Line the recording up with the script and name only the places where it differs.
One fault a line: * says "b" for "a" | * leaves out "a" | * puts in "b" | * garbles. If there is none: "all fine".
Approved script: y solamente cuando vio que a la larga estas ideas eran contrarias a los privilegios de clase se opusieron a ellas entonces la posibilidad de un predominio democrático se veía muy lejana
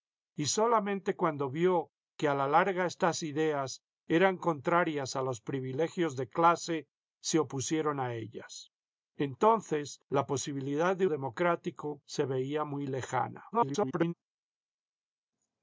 * leaves out "un predominio"
* garbles